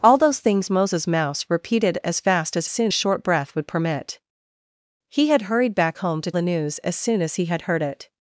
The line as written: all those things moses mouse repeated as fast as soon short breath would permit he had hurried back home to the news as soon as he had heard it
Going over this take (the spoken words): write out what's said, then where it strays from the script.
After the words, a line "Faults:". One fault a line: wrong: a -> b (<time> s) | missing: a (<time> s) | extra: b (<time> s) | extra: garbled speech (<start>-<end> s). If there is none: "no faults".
all those things moses mouse repeated as fast as soon short breath would permit he had hurried back home to the news as soon as he had heard it
Faults:
no faults